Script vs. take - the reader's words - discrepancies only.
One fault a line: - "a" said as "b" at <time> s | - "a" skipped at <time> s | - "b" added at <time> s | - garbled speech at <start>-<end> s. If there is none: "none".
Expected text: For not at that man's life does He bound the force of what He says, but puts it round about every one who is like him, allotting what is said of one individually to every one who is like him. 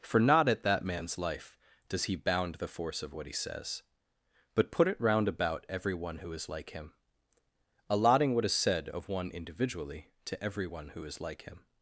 - "puts" said as "put" at 4.7 s